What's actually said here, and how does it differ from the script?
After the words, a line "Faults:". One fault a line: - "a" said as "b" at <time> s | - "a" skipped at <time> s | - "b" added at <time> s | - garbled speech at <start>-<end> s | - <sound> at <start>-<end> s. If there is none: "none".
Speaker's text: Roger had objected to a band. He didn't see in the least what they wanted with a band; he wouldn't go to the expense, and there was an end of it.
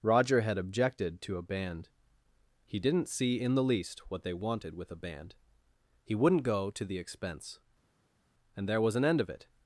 Roger had objected to a band. He didn't see in the least what they wanted with a band; he wouldn't go to the expense, and there was an end of it.
Faults:
none